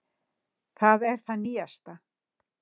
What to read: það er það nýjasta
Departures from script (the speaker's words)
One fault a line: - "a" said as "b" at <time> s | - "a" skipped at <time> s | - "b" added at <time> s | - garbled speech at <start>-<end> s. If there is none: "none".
none